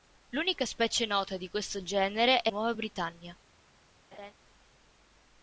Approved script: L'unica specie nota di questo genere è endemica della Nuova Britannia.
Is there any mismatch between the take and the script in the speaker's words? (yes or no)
yes